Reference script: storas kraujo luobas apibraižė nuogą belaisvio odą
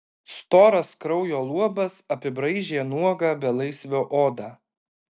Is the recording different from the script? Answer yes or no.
no